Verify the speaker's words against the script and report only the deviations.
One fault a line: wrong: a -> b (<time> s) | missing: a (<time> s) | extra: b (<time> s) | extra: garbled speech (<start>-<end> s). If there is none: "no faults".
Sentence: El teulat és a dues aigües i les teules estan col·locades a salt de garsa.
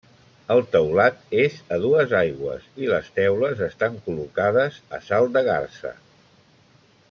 no faults